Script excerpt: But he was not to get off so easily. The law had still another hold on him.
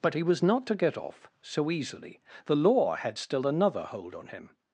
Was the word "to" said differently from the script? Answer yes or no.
no